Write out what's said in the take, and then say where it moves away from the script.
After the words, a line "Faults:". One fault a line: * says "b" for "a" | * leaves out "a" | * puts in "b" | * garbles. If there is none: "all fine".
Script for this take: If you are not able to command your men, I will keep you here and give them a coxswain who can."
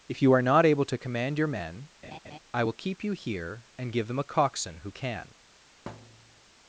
If you are not able to command your men, I will keep you here and give them a coxswain who can."
Faults:
all fine